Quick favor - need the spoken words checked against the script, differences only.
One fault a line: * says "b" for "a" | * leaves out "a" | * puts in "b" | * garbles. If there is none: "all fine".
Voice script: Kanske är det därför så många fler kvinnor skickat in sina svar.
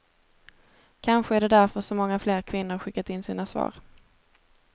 all fine